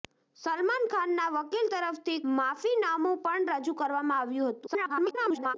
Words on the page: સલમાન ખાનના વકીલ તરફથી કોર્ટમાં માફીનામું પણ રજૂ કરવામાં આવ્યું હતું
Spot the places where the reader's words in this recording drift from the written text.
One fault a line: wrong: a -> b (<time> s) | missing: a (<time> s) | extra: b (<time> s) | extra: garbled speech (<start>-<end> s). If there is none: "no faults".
missing: કોર્ટમાં (2.2 s)
extra: garbled speech (4.7-5.5 s)